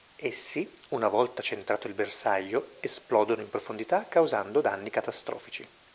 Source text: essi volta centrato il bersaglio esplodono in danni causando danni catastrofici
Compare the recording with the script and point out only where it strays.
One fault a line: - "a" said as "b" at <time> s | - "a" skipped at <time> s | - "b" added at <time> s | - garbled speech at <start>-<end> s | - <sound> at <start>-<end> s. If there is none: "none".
- "una" added at 0.9 s
- "danni" said as "profondità" at 3.5 s